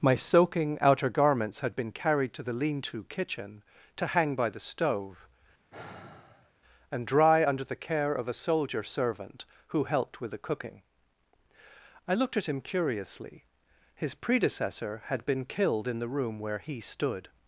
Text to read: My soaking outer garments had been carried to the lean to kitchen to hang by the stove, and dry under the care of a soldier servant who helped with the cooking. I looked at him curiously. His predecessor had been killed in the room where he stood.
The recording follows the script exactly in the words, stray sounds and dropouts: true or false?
false